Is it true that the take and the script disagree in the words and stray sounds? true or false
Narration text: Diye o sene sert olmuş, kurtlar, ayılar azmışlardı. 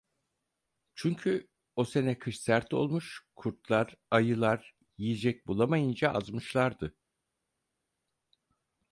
true